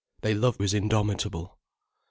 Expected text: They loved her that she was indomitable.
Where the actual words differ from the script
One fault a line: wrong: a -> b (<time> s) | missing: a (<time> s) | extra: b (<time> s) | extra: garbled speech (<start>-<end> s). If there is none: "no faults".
missing: her that she (0.6 s)